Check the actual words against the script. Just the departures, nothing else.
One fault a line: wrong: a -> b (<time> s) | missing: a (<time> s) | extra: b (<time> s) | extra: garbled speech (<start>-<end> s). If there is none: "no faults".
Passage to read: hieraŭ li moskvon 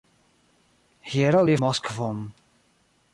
no faults